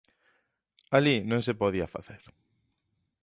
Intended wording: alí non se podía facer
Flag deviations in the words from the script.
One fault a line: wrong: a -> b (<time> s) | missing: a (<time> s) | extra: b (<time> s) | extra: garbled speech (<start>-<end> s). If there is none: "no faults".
no faults